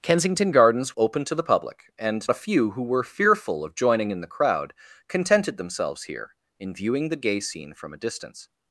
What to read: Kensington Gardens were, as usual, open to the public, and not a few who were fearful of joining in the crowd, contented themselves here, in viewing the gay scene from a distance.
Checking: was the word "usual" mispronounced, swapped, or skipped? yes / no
yes